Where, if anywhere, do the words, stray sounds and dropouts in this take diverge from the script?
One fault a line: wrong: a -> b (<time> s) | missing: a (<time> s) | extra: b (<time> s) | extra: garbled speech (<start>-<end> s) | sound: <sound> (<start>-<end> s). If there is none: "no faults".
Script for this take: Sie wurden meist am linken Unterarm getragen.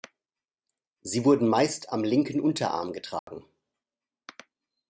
sound: dropout (3.2-3.3 s)